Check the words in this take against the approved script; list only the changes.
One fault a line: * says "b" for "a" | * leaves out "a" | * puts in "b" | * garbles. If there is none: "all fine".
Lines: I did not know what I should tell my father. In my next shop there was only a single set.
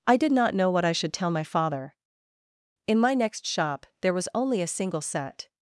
all fine